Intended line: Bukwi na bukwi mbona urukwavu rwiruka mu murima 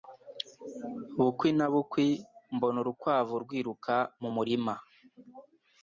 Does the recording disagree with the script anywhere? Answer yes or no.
no